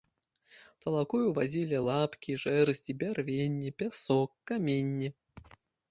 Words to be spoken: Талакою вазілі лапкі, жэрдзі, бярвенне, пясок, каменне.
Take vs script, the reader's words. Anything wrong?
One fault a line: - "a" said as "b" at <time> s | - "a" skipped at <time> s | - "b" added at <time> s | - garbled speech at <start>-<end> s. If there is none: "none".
none